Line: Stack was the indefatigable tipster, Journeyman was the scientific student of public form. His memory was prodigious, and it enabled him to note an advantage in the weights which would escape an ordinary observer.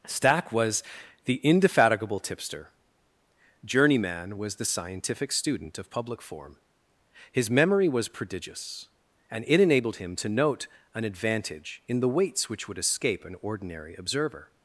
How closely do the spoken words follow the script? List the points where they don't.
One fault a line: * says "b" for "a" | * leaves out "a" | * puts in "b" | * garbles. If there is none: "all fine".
all fine